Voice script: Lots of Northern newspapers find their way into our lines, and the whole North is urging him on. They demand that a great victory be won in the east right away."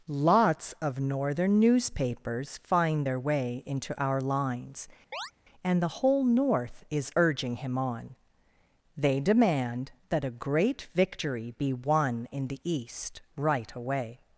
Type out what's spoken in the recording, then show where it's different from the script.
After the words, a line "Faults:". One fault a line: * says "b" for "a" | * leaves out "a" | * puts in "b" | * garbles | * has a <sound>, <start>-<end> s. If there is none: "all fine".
Lots of Northern newspapers find their way into our lines, and the whole North is urging him on. They demand that a great victory be won in the east right away."
Faults:
* has a chirp, 5.1-5.3 s